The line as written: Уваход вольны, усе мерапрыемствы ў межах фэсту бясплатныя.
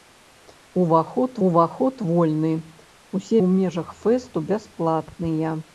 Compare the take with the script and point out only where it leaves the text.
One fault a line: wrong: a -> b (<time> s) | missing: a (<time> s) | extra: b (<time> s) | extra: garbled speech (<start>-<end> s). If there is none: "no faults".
extra: уваход (1.5 s)
missing: мерапрыемствы (3.4 s)